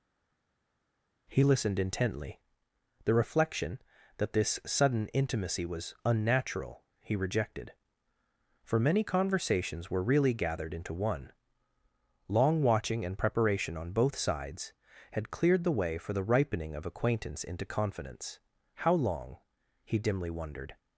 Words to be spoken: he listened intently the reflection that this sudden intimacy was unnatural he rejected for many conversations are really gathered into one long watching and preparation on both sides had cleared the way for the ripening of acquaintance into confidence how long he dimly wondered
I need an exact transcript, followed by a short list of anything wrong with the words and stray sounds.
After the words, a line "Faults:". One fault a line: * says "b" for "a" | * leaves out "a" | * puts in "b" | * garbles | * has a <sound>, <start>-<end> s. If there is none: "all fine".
he listened intently the reflection that this sudden intimacy was unnatural he rejected for many conversations were really gathered into one long watching and preparation on both sides had cleared the way for the ripening of acquaintance into confidence how long he dimly wondered
Faults:
* says "were" for "are"